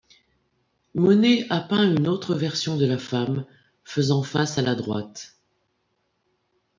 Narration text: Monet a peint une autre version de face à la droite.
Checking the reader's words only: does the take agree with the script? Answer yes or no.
no